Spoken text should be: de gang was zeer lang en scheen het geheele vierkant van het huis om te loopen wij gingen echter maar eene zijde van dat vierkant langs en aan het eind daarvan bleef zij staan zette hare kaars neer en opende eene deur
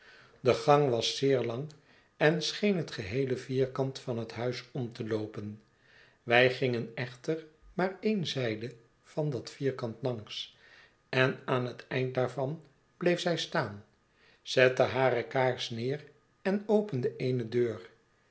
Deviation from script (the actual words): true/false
false